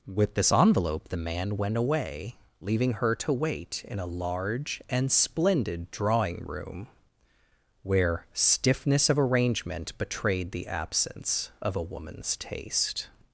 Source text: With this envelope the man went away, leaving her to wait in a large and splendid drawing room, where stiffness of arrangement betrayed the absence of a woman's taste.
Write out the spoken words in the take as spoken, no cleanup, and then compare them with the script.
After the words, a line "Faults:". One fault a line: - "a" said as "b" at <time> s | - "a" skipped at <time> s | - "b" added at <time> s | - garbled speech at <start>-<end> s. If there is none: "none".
With this envelope the man went away, leaving her to wait in a large and splendid drawing room, where stiffness of arrangement betrayed the absence of a woman's taste.
Faults:
none